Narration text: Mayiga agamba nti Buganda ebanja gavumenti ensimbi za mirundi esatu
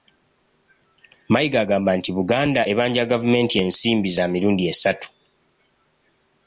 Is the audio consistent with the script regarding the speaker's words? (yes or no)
yes